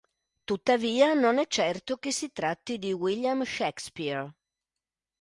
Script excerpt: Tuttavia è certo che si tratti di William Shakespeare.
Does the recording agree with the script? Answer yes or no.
no